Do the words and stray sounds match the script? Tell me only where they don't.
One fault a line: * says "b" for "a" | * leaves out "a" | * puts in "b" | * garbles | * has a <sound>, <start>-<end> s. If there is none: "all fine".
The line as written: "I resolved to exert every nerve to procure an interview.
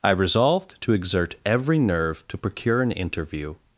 all fine